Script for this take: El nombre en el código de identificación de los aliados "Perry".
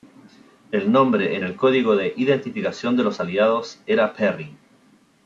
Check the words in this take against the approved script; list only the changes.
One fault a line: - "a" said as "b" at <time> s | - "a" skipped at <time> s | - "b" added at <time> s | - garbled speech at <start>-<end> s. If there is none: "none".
- "era" added at 3.9 s